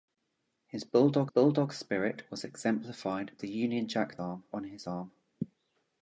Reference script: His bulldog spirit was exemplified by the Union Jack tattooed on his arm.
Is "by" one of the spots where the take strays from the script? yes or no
yes